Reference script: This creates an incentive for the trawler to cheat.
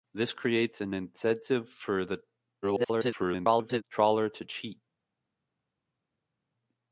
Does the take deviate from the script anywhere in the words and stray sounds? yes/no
yes